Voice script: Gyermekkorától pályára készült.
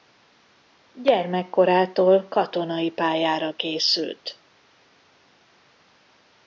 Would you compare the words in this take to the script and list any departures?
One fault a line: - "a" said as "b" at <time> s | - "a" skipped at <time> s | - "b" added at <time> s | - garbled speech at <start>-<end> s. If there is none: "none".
- "katonai" added at 2.3 s